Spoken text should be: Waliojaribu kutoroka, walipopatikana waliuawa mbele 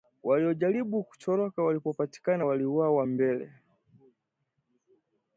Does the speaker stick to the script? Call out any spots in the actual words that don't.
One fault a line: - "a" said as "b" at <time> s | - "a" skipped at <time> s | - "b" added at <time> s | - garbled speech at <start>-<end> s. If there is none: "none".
none